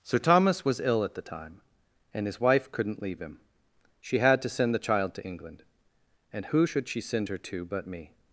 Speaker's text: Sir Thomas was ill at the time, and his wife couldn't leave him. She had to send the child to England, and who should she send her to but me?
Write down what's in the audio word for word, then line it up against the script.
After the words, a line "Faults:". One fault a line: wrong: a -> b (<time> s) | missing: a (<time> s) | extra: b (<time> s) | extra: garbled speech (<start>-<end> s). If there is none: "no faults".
Sir Thomas was ill at the time, and his wife couldn't leave him. She had to send the child to England, and who should she send her to but me?
Faults:
no faults